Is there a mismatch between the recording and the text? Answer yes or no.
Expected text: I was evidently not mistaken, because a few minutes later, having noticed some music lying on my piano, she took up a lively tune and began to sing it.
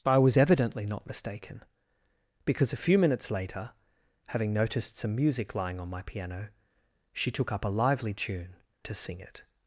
yes